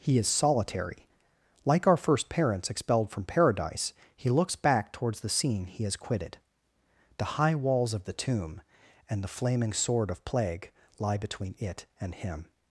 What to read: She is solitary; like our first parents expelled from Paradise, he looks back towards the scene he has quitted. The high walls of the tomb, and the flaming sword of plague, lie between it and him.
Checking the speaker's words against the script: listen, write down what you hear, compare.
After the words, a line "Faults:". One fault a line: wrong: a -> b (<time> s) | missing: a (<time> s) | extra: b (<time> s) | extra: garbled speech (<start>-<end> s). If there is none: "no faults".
He is solitary; like our first parents expelled from Paradise, he looks back towards the scene he has quitted. The high walls of the tomb, and the flaming sword of plague, lie between it and him.
Faults:
wrong: She -> He (0.0 s)